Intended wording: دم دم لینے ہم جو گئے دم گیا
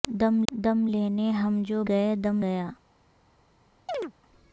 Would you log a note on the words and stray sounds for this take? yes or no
yes